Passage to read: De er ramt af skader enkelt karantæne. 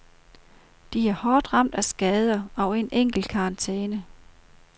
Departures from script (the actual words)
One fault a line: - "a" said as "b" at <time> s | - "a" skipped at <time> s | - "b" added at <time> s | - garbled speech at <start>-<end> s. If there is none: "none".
- "hårdt" added at 1.1 s
- "og en" added at 2.5 s